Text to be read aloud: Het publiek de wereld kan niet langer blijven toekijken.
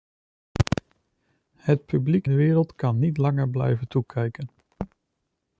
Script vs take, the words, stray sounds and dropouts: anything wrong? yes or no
no